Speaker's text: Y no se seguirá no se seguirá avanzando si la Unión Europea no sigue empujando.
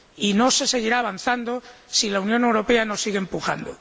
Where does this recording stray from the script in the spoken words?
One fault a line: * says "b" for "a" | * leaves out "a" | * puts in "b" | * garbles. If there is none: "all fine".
* leaves out "no se seguirá"